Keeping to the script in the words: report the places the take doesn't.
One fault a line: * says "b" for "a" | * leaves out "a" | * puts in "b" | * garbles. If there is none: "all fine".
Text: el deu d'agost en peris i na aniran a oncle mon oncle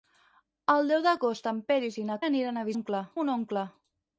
all fine